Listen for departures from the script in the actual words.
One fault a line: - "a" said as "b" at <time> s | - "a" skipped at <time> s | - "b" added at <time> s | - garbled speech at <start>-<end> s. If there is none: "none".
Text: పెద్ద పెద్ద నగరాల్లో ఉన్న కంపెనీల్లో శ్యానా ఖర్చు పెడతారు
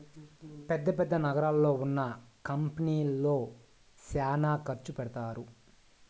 none